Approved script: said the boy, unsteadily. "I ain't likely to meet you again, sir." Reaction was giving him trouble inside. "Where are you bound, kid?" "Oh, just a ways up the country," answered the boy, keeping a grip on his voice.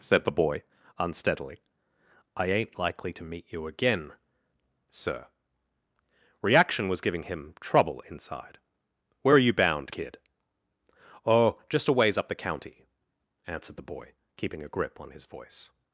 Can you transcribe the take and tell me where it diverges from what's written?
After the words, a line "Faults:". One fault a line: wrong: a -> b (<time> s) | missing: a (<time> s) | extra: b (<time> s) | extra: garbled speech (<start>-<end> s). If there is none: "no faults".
said the boy, unsteadily. "I ain't likely to meet you again, sir." Reaction was giving him trouble inside. "Where are you bound, kid?" "Oh, just a ways up the county," answered the boy, keeping a grip on his voice.
Faults:
wrong: country -> county (12.3 s)